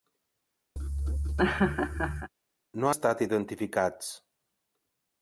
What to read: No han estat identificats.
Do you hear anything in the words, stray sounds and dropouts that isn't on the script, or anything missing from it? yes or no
yes